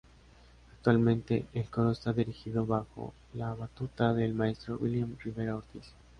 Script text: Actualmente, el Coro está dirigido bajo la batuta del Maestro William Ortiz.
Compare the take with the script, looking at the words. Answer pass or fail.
fail